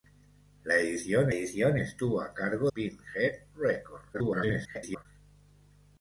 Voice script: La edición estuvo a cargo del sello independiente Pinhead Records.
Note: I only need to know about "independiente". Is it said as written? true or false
false